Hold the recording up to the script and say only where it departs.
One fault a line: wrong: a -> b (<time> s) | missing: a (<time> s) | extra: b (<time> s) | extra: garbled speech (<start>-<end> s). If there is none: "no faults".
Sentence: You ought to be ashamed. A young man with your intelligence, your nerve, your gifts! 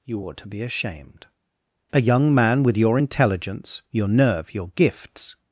no faults